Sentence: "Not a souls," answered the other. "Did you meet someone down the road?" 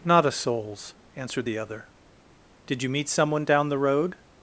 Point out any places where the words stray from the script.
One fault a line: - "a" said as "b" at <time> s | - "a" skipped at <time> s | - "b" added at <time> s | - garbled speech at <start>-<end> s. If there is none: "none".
none